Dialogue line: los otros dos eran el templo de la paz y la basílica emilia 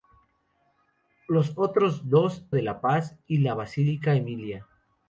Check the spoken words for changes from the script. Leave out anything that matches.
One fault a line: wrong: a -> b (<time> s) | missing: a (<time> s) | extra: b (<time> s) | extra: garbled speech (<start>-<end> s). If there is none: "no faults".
missing: eran el templo (2.5 s)